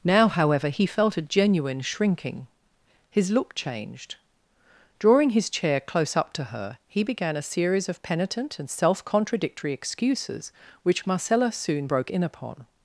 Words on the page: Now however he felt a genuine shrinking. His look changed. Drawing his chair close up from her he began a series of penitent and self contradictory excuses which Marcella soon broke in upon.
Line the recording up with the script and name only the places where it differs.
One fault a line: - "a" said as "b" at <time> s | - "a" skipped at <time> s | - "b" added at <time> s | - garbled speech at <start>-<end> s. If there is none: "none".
- "from" said as "to" at 6.3 s